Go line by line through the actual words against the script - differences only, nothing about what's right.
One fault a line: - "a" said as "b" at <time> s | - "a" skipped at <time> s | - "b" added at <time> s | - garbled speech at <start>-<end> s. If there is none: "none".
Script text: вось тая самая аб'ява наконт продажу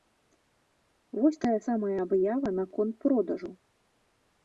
none